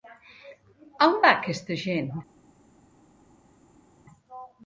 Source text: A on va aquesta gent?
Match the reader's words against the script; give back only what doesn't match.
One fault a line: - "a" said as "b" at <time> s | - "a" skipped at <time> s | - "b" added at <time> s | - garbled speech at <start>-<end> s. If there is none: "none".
none